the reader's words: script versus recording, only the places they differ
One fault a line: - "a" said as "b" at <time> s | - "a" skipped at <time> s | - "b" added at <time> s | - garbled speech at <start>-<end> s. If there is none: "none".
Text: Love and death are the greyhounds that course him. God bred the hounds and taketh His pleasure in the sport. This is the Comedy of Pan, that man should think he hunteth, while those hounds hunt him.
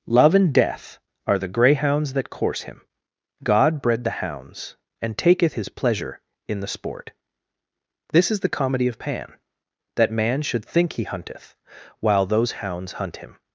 none